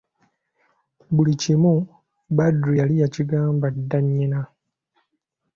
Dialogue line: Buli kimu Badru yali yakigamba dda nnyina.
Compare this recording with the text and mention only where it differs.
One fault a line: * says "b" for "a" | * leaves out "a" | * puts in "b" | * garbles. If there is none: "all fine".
all fine